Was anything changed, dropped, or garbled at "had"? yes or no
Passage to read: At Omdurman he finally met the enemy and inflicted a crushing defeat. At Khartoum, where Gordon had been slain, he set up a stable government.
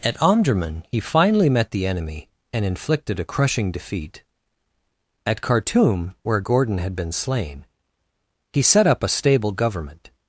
no